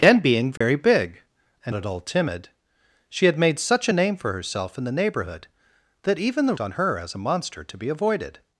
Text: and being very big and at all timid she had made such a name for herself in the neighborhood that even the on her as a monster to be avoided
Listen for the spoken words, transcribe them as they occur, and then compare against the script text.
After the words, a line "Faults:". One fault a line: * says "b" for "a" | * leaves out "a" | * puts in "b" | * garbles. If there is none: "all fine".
and being very big and at all timid she had made such a name for herself in the neighborhood that even the on her as a monster to be avoided
Faults:
all fine